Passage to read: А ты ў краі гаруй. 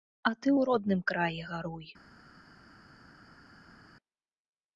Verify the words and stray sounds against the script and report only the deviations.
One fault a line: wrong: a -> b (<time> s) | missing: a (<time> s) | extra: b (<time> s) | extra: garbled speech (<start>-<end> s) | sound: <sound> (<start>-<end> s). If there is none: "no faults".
extra: родным (0.7 s)